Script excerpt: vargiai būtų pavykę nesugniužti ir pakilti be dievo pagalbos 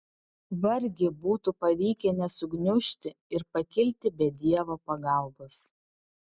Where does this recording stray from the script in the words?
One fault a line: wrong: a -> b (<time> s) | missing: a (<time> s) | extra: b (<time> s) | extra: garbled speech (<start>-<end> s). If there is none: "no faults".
no faults